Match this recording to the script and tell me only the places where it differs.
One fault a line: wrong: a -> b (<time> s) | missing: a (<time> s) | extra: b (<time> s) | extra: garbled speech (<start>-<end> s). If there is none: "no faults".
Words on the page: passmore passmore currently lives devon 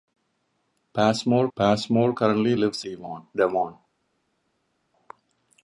no faults